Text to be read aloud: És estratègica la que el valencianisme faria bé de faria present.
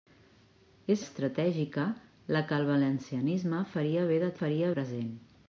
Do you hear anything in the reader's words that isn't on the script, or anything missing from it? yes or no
no